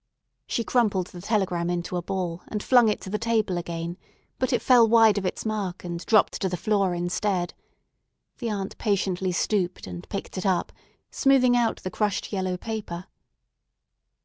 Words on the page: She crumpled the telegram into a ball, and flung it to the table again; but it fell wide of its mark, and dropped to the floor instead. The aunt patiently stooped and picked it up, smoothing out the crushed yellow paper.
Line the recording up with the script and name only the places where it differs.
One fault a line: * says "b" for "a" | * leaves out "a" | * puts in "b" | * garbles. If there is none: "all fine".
all fine